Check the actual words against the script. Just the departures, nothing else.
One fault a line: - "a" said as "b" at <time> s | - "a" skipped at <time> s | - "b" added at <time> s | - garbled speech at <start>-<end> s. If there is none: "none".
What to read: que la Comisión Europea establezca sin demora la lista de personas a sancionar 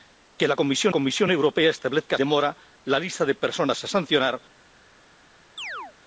- "Comisión" added at 0.9 s
- "sin" skipped at 2.2 s